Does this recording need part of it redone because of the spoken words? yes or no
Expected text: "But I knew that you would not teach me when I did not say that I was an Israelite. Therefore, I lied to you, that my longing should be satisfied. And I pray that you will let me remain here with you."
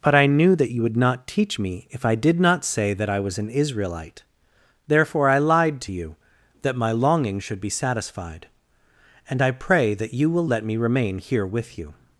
yes